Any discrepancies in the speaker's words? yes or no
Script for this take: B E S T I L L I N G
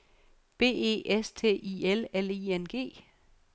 no